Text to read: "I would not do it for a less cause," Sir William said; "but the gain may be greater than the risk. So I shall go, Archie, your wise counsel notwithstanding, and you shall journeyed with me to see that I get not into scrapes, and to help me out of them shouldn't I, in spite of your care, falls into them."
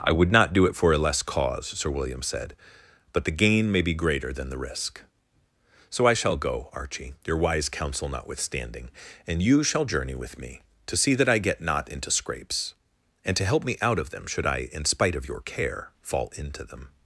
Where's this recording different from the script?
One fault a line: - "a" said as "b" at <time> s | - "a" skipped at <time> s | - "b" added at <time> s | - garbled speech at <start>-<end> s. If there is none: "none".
- "journeyed" said as "journey" at 9.8 s
- "shouldn't" said as "should" at 14.2 s
- "falls" said as "fall" at 16.0 s